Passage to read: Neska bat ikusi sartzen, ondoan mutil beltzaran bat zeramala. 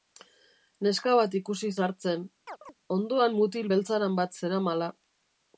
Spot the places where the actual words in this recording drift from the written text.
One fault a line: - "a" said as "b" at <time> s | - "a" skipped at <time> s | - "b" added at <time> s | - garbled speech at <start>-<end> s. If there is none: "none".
none